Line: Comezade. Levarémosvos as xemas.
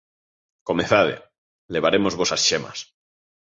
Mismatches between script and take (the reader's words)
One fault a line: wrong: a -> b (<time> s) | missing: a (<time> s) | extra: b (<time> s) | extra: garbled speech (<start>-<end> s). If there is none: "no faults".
no faults